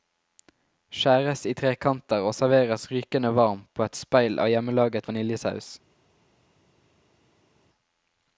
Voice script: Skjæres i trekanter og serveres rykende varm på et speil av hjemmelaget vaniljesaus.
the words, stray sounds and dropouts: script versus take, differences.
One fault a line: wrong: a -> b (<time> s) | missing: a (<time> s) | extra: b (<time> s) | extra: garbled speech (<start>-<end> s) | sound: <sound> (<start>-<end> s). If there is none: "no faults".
no faults